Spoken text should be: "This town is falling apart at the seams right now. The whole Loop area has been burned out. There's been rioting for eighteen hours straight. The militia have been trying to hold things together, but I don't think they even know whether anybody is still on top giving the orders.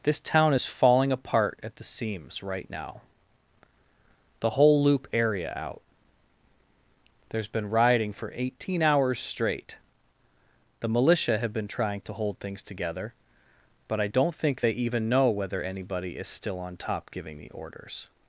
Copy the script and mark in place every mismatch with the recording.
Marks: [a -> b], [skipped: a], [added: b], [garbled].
"This town is falling apart at the seams right now. The whole Loop area [skipped: has been burned] out. There's been rioting for eighteen hours straight. The militia have been trying to hold things together, but I don't think they even know whether anybody is still on top giving the orders.